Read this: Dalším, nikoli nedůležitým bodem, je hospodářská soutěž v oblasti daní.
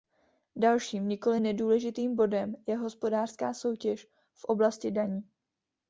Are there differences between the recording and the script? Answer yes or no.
no